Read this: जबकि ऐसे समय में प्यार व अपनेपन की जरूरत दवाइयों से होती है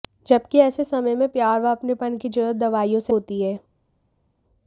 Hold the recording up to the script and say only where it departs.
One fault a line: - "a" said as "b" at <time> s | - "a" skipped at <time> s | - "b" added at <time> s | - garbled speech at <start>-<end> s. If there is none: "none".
none